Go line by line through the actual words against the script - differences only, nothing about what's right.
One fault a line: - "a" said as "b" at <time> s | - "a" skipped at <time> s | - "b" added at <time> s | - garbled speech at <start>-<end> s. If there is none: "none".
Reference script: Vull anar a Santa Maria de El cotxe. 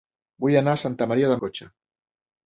none